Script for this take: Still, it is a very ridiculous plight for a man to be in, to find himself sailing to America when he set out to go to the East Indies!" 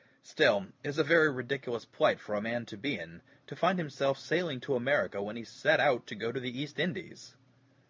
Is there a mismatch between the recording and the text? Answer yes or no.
no